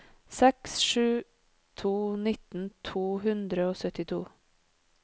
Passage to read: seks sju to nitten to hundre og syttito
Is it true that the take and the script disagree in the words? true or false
false